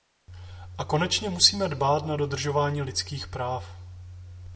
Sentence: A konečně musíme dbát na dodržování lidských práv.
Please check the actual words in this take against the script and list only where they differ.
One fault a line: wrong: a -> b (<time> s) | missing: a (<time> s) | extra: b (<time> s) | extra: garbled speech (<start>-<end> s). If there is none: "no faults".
no faults